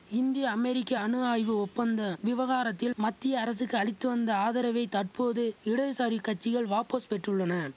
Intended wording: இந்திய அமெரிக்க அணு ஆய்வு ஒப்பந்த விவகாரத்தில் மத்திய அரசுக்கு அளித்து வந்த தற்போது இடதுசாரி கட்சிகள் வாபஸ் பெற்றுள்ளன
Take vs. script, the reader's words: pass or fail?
fail